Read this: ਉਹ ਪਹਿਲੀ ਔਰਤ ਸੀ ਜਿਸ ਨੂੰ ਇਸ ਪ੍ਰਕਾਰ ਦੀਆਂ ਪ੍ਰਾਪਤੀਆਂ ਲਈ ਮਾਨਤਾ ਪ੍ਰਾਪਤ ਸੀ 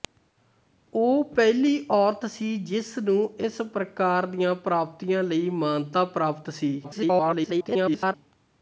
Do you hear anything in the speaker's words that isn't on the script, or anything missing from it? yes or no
yes